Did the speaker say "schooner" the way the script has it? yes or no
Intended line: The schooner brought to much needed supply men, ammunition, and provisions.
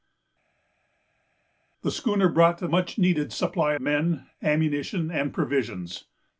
yes